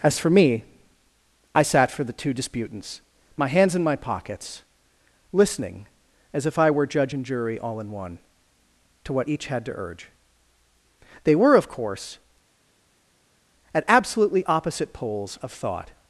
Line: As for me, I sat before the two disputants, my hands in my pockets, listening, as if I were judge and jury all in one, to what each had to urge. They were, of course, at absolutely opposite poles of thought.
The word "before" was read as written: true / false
false